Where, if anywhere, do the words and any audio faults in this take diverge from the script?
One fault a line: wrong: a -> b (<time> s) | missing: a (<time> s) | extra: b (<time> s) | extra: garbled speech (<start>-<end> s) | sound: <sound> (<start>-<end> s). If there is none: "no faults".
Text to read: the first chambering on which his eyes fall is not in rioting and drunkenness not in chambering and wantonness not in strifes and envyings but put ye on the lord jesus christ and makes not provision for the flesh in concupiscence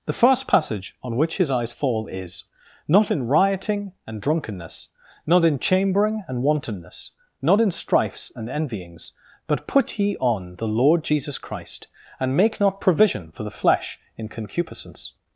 wrong: chambering -> passage (0.5 s)
wrong: makes -> make (12.3 s)